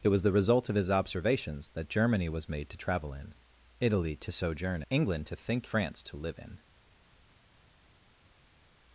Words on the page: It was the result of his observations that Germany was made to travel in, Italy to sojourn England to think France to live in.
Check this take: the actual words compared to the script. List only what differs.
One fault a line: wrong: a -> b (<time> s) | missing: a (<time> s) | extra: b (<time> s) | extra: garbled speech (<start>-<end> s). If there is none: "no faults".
no faults